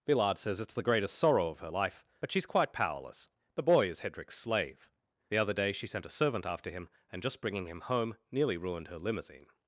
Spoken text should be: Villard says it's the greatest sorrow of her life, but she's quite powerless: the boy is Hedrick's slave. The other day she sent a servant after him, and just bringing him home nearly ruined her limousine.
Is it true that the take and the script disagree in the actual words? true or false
false